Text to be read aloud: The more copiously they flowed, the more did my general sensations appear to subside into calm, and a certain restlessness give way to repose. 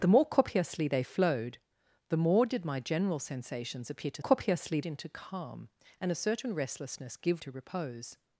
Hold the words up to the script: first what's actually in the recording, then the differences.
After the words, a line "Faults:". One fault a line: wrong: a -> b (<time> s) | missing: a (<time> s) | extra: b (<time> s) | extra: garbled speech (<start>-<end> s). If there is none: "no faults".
The more copiously they flowed, the more did my general sensations appear to copiously into calm, and a certain restlessness give to repose.
Faults:
wrong: subside -> copiously (4.2 s)
missing: way (7.4 s)